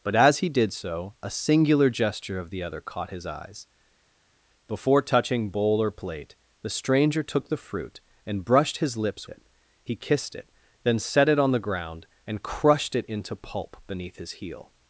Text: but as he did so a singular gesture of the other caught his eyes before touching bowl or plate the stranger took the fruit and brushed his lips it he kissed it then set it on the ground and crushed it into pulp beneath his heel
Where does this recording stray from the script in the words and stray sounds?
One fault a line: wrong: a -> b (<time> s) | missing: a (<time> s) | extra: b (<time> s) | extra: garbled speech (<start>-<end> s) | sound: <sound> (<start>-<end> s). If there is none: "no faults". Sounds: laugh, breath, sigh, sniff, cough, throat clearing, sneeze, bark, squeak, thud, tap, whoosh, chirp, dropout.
no faults